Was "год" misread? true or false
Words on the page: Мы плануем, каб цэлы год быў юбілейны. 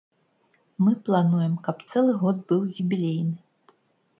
false